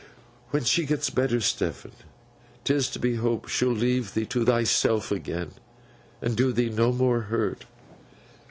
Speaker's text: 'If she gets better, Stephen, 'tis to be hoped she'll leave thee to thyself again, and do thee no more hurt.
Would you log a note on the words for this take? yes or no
yes